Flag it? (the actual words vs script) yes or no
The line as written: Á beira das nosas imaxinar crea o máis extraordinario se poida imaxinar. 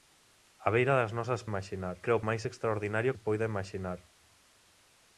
no